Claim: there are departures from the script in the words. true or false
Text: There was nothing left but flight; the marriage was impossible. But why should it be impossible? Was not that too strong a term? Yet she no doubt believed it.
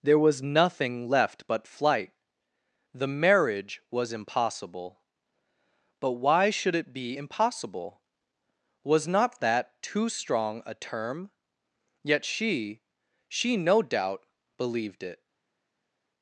true